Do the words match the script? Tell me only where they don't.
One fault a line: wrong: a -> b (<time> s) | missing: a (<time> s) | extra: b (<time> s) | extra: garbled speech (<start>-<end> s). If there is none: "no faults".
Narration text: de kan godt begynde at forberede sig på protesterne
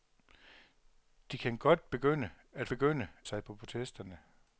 wrong: forberede -> begynde (2.7 s)